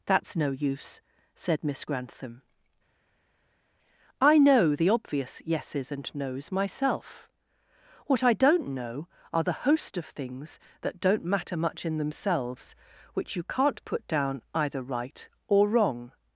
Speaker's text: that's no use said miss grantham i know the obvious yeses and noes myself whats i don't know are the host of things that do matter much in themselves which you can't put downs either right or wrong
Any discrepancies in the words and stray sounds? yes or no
yes